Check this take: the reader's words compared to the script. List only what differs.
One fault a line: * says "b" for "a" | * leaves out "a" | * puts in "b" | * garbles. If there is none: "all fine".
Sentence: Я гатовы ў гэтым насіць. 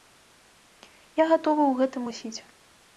all fine